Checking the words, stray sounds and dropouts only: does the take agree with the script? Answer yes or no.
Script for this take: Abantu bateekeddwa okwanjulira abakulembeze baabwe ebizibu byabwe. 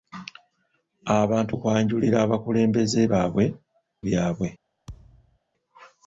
no